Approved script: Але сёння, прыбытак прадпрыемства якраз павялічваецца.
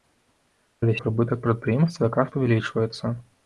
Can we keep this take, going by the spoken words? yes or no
no